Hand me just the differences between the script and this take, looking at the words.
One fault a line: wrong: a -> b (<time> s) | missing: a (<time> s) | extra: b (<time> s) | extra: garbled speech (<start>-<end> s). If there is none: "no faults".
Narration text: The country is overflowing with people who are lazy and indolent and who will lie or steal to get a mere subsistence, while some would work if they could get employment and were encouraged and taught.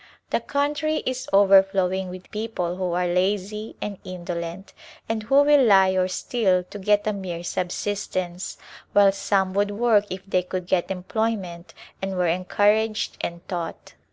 no faults